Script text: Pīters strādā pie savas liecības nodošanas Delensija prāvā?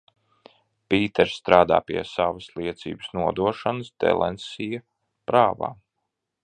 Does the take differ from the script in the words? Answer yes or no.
no